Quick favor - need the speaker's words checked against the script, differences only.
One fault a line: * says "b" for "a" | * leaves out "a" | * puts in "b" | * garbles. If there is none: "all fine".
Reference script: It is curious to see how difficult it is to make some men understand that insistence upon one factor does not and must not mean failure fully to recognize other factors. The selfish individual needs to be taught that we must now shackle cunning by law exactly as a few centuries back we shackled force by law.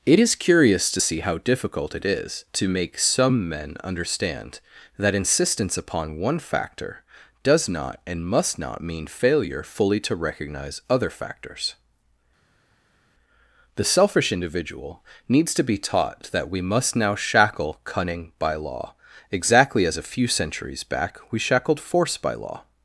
all fine